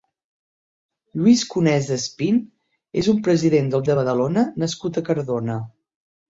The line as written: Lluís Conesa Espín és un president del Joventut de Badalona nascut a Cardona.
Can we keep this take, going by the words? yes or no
no